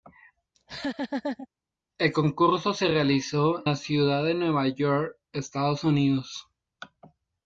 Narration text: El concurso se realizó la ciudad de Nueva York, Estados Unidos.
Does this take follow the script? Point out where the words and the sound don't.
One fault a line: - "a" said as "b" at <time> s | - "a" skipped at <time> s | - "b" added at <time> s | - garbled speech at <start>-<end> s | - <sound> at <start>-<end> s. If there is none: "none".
- laugh at 0.5-1.5 s